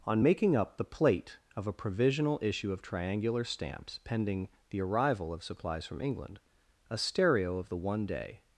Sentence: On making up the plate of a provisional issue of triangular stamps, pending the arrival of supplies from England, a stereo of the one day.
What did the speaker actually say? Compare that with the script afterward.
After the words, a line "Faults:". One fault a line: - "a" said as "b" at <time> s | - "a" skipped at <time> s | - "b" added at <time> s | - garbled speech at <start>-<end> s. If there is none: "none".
On making up the plate of a provisional issue of triangular stamps, pending the arrival of supplies from England, a stereo of the one day.
Faults:
none